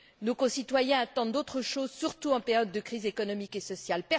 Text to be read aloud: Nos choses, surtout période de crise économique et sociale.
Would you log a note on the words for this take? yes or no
yes